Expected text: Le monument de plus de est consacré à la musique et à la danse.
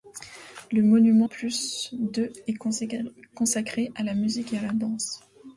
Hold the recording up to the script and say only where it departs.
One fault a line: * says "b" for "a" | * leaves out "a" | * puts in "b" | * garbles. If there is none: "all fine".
* leaves out "de"